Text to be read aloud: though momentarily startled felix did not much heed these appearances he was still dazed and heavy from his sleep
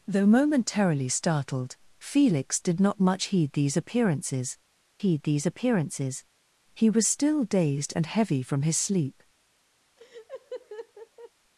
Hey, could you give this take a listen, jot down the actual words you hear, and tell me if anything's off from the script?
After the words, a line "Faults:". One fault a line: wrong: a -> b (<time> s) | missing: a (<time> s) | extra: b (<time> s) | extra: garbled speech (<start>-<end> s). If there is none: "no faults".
though momentarily startled felix did not much heed these appearances heed these appearances he was still dazed and heavy from his sleep
Faults:
extra: heed these appearances (5.0 s)